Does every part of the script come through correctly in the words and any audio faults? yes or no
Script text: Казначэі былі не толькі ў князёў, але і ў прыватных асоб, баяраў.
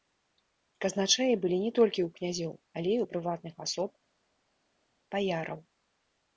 yes